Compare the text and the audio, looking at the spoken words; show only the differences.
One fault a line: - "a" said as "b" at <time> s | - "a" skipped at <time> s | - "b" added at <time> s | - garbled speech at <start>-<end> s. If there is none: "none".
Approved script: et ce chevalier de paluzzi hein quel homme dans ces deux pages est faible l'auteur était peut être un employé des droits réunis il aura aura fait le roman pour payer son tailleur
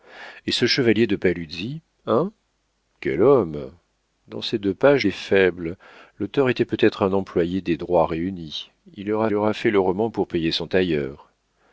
none